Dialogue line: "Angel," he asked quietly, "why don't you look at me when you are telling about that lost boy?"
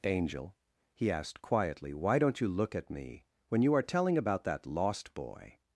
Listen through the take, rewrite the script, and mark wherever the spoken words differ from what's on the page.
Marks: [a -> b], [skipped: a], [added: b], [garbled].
"Angel," he asked quietly, "why don't you look at me when you are telling about that lost boy?"